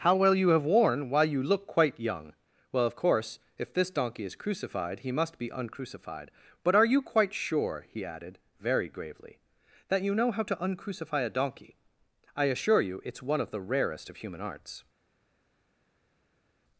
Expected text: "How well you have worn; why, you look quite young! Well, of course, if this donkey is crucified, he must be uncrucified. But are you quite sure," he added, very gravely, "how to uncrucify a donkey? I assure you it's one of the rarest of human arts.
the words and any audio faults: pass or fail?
fail